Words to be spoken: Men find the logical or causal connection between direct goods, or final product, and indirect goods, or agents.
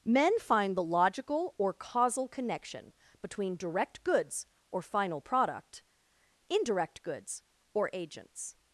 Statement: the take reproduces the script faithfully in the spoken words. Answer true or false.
false